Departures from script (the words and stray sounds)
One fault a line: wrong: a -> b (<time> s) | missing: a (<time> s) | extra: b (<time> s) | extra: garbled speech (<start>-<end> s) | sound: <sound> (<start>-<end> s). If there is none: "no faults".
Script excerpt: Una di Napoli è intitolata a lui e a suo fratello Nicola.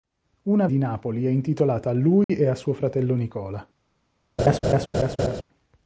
sound: dropout (2.2-2.3 s)
sound: laugh (4.4-5.4 s)